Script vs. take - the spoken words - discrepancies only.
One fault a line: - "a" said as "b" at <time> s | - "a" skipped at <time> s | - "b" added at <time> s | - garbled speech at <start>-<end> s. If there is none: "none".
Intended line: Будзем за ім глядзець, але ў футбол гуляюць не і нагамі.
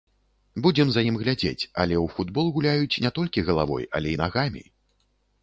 - "толькі галавой але" added at 3.2 s